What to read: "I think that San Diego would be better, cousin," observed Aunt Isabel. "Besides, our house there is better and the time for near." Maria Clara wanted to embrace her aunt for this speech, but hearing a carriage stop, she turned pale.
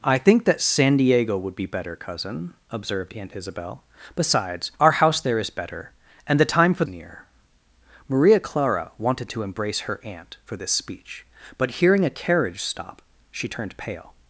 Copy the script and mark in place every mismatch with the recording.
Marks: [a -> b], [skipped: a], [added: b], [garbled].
"I think that San Diego would be better, cousin," observed Aunt Isabel. "Besides, our house there is better and the time for near." Maria Clara wanted to embrace her aunt for this speech, but hearing a carriage stop, she turned pale.